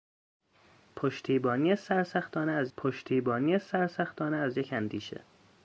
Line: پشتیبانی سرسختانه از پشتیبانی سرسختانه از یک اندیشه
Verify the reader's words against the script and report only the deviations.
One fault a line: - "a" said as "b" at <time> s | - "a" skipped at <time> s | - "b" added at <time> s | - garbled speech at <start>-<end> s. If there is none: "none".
none